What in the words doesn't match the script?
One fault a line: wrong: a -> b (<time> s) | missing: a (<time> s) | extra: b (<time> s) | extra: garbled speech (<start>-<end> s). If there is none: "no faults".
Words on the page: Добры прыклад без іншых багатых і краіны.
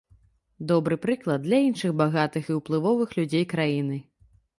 wrong: без -> для (1.5 s)
extra: ўплывовых людзей (2.6 s)